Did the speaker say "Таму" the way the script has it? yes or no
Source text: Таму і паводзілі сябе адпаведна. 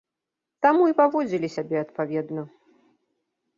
yes